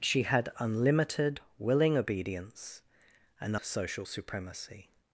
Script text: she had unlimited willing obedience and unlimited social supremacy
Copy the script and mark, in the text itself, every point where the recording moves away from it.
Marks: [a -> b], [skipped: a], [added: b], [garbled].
she had unlimited willing obedience and [skipped: unlimited] social supremacy